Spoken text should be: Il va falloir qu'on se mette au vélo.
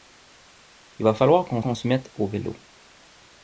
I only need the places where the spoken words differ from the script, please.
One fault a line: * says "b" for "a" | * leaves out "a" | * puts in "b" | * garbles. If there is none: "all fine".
* puts in "qu'on"